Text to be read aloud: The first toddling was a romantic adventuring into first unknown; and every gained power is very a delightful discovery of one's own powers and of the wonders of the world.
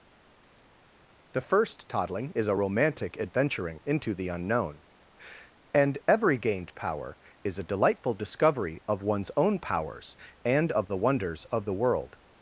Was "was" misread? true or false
true